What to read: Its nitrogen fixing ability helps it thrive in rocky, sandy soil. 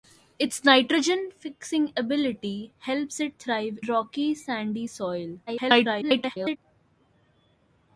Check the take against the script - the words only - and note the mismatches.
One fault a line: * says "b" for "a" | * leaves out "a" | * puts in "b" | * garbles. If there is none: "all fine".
* leaves out "in"
* garbles